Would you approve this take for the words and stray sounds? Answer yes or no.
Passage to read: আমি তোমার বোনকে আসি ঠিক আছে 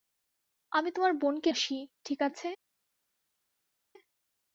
yes